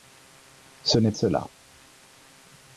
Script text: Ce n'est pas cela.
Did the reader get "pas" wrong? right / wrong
wrong